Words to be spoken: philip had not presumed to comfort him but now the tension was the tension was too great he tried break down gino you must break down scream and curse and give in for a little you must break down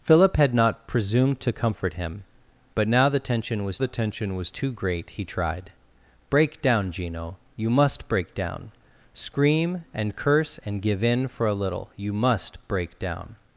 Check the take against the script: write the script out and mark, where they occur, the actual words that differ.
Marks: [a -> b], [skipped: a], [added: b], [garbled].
philip had not presumed to comfort him but now the tension was the tension was too great he tried break down gino you must break down scream and curse and give in for a little you must break down